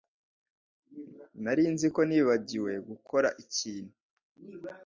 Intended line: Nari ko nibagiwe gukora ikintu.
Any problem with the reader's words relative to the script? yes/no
yes